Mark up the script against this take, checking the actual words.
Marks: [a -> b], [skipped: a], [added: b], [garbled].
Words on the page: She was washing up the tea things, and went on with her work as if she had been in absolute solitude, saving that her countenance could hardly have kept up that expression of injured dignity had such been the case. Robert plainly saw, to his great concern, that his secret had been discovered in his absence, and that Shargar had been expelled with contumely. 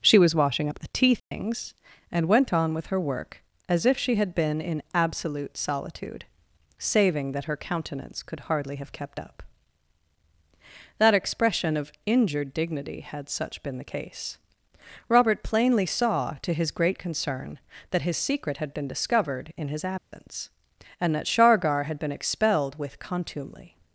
She was washing up the tea things, and went on with her work as if she had been in absolute solitude, saving that her countenance could hardly have kept up that expression of injured dignity had such been the case. Robert plainly saw, to his great concern, that his secret had been discovered in his absence, and that Shargar had been expelled with contumely.